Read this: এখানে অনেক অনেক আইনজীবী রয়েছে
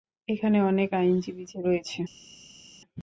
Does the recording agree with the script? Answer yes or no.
no